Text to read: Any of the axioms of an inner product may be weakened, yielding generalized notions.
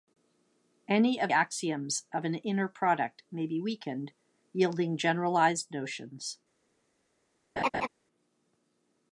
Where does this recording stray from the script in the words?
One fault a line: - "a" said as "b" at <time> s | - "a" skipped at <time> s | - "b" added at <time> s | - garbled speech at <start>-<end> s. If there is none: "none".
- "the" skipped at 1.3 s